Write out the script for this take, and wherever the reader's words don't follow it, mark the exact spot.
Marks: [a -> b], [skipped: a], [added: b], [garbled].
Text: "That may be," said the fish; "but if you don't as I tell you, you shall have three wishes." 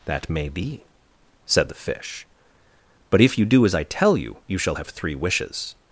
"That may be," said the fish; "but if you [don't -> do] as I tell you, you shall have three wishes."